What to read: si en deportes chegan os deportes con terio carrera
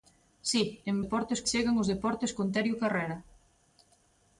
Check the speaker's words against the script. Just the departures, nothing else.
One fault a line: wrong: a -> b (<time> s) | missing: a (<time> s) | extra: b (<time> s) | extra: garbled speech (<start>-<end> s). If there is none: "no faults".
no faults